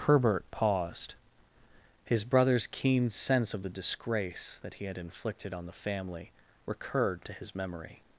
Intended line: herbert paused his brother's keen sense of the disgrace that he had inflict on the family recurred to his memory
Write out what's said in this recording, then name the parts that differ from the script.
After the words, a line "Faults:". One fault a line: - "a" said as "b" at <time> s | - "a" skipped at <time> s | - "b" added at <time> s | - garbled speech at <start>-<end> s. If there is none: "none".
herbert paused his brother's keen sense of the disgrace that he had inflicted on the family recurred to his memory
Faults:
- "inflict" said as "inflicted" at 5.0 s